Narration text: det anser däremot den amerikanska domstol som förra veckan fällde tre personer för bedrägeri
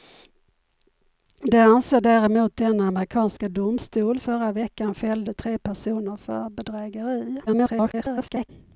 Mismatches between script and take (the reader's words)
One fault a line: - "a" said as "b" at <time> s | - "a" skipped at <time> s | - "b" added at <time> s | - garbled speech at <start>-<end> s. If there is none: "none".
- "som" skipped at 4.2 s
- garbled speech at 7.5-8.5 s